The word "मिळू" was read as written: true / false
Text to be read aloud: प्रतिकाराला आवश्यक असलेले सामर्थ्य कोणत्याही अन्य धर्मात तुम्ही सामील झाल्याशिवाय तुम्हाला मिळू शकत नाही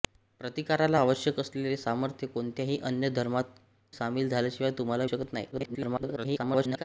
false